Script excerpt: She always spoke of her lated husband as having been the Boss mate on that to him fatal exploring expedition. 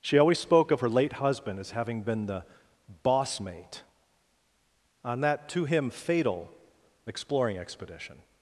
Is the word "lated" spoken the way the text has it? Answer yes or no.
no